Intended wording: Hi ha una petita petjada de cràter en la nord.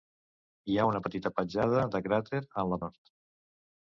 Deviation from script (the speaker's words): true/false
false